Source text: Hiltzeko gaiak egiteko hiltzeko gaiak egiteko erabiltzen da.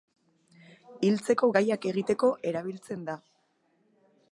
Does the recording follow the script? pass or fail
fail